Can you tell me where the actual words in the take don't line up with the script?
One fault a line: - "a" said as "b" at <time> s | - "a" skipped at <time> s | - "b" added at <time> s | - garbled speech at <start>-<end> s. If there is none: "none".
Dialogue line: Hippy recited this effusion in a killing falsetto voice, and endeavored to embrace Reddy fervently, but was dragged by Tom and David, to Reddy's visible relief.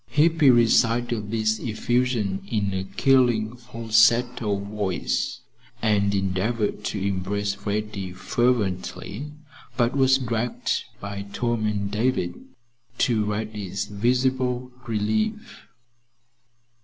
none